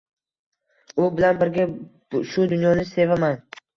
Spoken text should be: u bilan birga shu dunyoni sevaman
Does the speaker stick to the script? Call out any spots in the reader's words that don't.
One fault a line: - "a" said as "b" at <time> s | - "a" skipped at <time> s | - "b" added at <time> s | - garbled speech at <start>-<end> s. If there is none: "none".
none